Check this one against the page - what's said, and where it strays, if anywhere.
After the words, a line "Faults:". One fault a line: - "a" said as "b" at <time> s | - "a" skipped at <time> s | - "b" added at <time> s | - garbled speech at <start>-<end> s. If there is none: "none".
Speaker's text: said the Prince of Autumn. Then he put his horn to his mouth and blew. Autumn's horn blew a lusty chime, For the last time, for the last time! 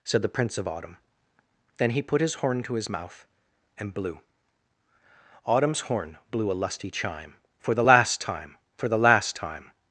said the Prince of Autumn. Then he put his horn to his mouth and blew. Autumn's horn blew a lusty chime, For the last time, for the last time!
Faults:
none